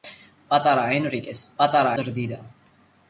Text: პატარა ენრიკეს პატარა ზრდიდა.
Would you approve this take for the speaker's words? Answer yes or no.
yes